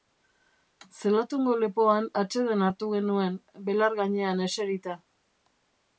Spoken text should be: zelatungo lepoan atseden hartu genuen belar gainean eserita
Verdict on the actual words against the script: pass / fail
pass